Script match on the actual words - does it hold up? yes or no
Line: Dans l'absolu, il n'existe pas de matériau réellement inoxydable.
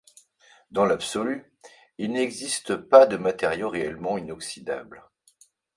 yes